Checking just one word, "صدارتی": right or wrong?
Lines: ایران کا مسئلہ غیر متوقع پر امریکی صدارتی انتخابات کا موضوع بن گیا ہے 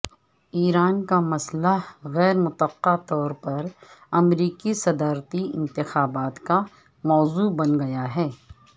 right